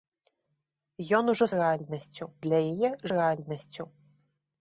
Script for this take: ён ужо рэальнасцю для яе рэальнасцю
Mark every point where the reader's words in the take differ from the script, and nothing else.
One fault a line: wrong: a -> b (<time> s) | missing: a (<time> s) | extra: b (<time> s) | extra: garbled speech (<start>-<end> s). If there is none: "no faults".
no faults